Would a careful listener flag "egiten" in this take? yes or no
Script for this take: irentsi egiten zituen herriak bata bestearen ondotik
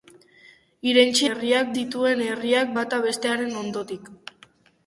yes